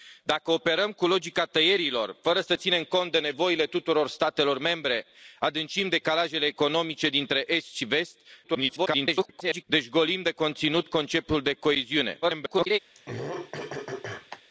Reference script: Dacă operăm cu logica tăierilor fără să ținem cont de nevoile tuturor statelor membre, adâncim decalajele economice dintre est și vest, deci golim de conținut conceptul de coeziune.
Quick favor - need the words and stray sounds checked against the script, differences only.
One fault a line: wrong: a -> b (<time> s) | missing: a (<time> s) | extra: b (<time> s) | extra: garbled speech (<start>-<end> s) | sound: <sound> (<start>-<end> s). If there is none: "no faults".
extra: garbled speech (8.4-9.6 s)
extra: garbled speech (12.2-12.8 s)
sound: throat clearing (12.9-14.4 s)